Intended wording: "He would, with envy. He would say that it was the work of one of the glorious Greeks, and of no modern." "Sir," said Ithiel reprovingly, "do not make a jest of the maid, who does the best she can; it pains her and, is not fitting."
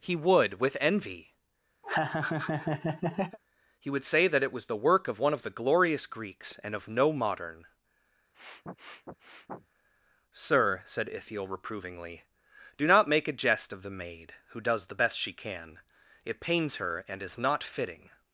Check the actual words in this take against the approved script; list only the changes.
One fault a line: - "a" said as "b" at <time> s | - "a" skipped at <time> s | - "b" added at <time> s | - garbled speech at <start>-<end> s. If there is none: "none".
none